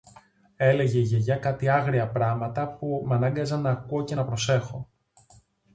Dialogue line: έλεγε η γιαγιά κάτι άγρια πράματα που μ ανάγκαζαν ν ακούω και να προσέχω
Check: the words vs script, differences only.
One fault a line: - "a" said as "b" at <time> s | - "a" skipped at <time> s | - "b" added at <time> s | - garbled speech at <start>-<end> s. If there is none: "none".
none